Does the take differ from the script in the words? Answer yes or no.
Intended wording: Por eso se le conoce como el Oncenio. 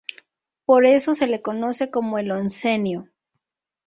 no